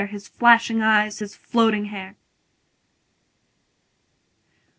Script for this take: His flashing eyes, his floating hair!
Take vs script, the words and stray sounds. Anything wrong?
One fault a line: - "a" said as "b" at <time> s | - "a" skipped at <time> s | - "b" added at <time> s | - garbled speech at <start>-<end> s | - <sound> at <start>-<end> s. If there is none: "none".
none